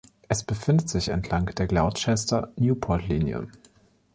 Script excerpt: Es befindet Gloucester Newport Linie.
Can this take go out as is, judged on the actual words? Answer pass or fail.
fail